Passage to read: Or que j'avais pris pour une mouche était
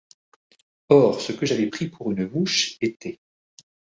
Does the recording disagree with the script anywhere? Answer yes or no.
yes